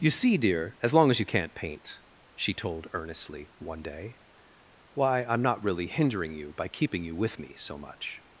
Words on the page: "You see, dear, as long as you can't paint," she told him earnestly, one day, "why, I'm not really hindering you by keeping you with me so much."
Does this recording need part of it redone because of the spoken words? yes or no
yes